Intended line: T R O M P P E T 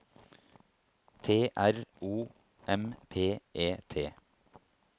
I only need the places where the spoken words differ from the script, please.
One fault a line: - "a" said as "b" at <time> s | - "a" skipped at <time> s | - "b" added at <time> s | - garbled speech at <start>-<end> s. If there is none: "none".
- "P" skipped at 3.4 s